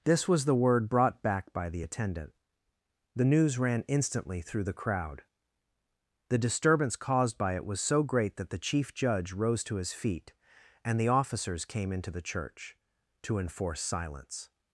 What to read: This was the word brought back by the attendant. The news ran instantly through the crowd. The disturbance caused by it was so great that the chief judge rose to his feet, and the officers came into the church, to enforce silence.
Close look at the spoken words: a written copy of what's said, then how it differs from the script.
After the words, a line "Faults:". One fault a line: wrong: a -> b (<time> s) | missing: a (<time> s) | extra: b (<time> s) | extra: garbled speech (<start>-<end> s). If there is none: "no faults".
This was the word brought back by the attendant. The news ran instantly through the crowd. The disturbance caused by it was so great that the chief judge rose to his feet, and the officers came into the church, to enforce silence.
Faults:
no faults